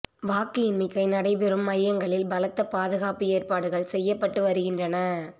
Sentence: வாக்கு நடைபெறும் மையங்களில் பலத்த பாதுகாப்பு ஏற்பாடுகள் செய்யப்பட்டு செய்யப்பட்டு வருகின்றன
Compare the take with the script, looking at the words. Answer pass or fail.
fail